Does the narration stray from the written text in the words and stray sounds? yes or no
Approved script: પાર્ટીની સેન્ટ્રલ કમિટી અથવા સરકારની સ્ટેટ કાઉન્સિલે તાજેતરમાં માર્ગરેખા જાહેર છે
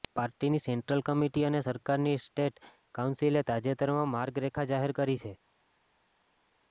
yes